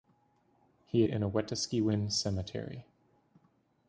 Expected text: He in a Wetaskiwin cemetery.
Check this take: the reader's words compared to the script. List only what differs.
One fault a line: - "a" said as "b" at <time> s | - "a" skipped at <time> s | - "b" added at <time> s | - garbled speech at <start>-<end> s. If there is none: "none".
none